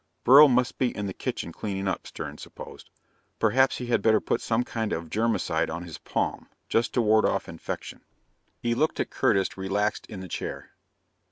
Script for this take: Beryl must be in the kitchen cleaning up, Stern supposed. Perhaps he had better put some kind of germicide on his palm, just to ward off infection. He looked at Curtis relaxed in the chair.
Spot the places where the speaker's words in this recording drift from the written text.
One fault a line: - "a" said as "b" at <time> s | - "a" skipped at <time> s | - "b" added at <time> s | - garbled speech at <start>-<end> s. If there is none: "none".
none